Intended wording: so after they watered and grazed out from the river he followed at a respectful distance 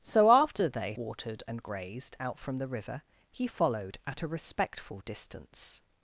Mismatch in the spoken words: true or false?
false